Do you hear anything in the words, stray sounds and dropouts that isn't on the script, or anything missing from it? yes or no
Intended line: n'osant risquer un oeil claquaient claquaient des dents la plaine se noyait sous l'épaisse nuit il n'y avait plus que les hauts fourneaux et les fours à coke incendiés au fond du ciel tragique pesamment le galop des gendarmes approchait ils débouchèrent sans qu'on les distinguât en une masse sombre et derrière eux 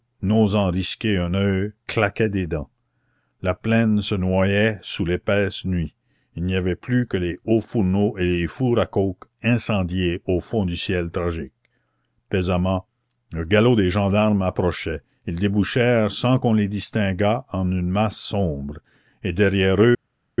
yes